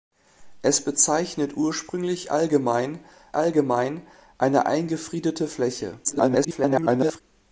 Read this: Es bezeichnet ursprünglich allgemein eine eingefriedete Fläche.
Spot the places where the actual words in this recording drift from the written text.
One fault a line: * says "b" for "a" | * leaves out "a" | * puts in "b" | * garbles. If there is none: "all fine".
* puts in "allgemein"
* garbles